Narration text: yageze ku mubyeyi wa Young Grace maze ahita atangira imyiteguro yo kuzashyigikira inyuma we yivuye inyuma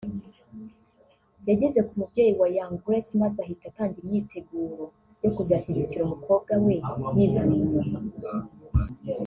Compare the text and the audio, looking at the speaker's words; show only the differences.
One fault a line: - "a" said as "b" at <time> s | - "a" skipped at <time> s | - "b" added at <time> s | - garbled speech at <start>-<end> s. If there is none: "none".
- "inyuma" said as "umukobwa" at 6.0 s